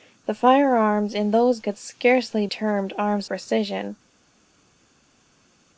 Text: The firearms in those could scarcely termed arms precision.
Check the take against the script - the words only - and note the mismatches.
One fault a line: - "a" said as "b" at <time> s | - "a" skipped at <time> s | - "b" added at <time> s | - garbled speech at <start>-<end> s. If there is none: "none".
none